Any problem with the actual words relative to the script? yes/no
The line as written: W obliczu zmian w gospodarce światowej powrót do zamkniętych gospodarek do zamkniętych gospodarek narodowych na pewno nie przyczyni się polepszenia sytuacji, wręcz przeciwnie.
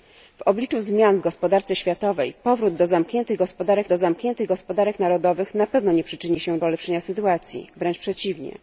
no